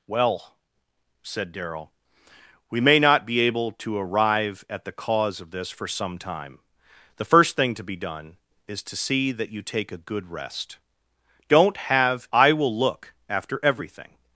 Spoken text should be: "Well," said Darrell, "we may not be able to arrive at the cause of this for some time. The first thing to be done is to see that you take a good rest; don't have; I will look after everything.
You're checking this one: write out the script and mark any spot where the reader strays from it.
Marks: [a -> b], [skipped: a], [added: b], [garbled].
"Well," said Darrell, "we may not be able to arrive at the cause of this for some time. The first thing to be done is to see that you take a good rest; don't have; I will look after everything.